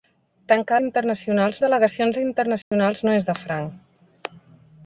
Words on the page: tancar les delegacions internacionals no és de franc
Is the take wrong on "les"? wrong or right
wrong